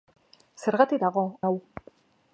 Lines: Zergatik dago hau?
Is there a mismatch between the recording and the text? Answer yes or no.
no